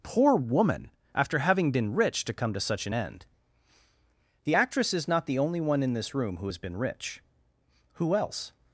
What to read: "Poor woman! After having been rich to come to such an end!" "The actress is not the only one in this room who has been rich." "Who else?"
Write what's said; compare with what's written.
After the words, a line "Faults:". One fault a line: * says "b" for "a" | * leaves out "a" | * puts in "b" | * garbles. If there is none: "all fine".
"Poor woman! After having been rich to come to such an end!" "The actress is not the only one in this room who has been rich." "Who else?"
Faults:
all fine